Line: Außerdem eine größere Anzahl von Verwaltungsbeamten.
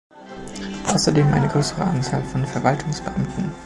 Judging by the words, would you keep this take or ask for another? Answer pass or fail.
pass